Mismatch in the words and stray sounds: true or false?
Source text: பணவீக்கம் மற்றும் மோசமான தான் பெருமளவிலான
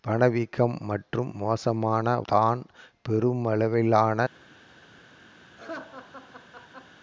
true